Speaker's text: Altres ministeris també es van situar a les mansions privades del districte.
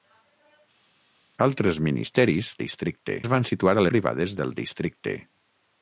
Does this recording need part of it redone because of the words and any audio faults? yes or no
yes